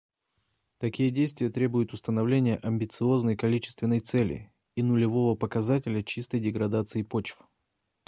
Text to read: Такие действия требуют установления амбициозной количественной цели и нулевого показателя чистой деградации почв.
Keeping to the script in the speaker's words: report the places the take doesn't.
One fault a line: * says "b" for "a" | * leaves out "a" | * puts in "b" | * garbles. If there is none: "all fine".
all fine